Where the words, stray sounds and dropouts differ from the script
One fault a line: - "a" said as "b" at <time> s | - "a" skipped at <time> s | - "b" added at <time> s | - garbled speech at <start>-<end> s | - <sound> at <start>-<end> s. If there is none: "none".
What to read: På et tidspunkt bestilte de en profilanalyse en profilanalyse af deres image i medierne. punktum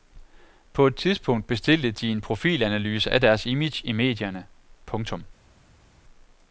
- "en profilanalyse" skipped at 3.1 s